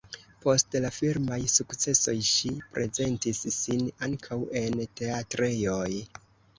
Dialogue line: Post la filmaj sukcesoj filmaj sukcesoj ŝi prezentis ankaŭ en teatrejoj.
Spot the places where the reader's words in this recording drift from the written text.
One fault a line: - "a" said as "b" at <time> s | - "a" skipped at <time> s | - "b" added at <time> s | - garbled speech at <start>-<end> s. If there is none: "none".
- "filmaj sukcesoj" skipped at 2.2 s
- "sin" added at 3.6 s